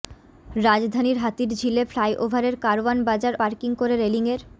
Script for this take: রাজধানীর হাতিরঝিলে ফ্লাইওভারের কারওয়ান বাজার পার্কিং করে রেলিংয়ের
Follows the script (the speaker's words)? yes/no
yes